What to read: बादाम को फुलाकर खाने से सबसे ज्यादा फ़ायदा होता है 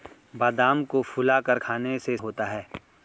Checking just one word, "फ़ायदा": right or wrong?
wrong